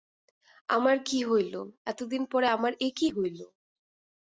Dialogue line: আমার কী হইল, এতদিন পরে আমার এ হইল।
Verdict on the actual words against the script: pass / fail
fail